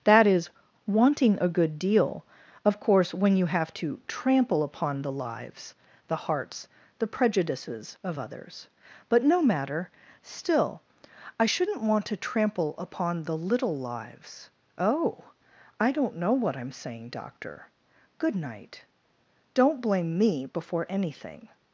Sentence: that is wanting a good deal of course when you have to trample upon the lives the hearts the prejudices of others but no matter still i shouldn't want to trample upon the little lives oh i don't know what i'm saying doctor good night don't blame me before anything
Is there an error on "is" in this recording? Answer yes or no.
no